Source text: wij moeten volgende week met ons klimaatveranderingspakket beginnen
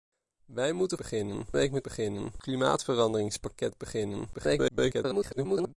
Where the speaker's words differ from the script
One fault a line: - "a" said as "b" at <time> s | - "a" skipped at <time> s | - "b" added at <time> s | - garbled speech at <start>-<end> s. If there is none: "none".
- "volgende" said as "beginnen" at 0.9 s
- "ons" said as "beginnen" at 1.8 s
- garbled speech at 4.3-5.8 s